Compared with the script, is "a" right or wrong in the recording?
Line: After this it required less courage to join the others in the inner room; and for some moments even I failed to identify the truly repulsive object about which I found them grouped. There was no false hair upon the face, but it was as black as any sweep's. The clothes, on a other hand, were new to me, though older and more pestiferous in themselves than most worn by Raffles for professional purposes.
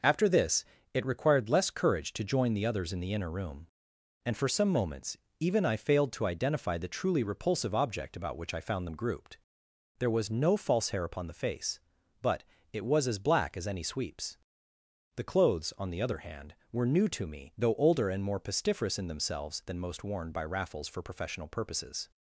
wrong